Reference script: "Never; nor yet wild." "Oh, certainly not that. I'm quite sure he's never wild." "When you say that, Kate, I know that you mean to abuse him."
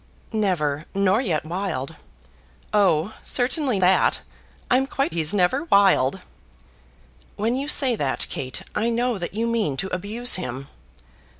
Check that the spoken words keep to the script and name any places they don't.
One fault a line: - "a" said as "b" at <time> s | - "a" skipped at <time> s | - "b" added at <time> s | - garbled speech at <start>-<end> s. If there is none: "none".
- "not" skipped at 3.8 s
- "sure" skipped at 5.1 s